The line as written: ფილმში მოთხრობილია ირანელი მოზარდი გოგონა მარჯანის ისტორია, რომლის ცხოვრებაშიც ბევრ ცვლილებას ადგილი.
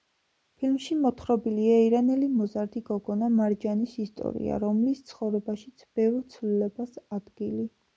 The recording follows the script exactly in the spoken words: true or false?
true